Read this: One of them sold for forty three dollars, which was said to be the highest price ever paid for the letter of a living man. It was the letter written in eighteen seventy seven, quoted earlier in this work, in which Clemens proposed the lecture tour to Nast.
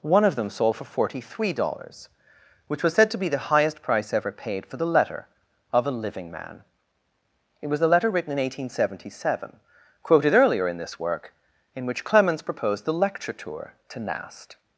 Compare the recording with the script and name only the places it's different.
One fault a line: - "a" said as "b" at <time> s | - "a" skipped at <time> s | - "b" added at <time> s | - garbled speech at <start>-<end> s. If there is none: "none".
none